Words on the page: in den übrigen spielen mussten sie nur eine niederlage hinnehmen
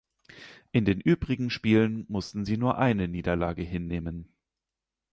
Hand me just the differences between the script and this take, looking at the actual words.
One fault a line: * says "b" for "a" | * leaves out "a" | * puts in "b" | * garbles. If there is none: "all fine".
all fine